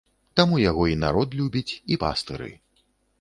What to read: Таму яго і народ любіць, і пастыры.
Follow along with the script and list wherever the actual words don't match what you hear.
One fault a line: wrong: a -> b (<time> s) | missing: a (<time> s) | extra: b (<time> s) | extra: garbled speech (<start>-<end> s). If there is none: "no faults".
no faults